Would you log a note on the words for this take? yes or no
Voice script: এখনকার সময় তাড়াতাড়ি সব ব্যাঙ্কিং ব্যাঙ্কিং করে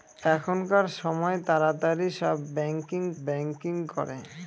no